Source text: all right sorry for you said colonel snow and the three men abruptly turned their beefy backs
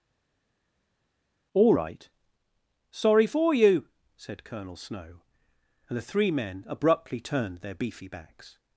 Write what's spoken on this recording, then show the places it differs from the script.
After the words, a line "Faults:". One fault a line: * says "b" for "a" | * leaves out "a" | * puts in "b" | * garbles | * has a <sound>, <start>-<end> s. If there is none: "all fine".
all right sorry for you said colonel snow and the three men abruptly turned their beefy backs
Faults:
all fine